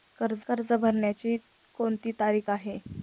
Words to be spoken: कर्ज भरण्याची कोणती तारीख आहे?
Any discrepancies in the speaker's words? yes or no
yes